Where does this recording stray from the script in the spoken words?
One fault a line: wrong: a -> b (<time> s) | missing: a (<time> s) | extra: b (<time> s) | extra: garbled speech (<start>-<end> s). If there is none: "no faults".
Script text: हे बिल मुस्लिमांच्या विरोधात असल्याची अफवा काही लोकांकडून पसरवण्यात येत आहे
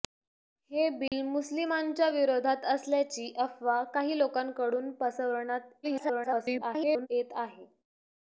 extra: garbled speech (5.8-7.1 s)